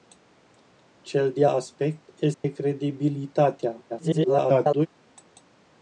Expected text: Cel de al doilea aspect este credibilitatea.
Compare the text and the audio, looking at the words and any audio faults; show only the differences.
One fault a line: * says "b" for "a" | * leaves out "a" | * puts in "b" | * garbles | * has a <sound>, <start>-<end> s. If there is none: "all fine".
* leaves out "al doilea"
* has a dropout, 2.3-2.4 s
* garbles